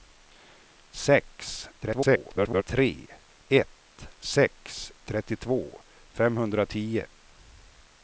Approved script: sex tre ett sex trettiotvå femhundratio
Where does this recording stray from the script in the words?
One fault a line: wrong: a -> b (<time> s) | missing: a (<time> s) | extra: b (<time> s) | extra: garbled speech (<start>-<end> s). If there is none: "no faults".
extra: garbled speech (1.8-2.6 s)